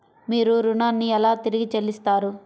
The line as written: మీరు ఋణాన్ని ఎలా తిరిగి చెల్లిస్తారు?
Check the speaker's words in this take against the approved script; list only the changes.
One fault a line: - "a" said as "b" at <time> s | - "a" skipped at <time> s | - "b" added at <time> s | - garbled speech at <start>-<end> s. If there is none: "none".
none